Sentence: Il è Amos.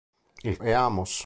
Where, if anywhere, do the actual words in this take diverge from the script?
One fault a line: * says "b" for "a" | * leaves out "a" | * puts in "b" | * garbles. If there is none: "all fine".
all fine